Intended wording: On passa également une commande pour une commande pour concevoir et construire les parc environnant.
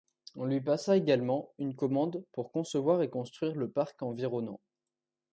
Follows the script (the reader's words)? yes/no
no